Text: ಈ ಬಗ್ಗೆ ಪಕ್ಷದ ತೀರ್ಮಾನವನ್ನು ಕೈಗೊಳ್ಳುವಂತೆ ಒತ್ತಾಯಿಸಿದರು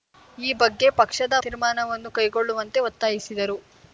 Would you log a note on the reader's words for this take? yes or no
no